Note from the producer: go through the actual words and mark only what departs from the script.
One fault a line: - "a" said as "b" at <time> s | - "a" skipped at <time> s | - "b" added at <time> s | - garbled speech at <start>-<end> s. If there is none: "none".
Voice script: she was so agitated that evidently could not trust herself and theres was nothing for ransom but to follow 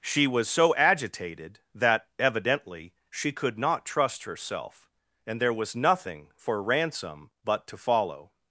- "she" added at 3.1 s
- "theres" said as "there" at 5.4 s